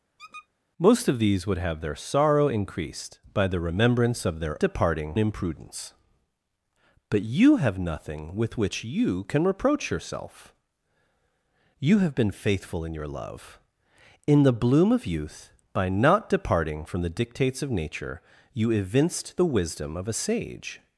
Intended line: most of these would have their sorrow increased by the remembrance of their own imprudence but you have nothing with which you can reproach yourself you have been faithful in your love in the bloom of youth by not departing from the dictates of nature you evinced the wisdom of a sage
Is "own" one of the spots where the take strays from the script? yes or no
yes